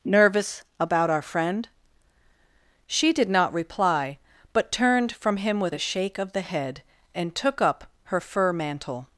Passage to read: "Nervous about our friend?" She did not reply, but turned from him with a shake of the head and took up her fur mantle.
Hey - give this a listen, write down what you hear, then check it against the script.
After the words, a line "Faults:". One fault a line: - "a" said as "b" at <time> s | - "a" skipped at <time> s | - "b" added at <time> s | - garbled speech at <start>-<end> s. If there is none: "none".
"Nervous about our friend?" She did not reply, but turned from him with a shake of the head and took up her fur mantle.
Faults:
none